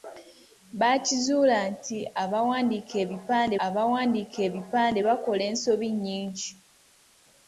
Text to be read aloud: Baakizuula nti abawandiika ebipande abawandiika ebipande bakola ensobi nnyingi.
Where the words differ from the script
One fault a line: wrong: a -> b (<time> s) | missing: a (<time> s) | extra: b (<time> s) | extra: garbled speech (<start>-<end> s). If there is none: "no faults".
no faults